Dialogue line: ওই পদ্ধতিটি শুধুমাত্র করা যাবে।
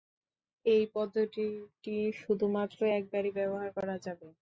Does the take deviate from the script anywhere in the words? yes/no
yes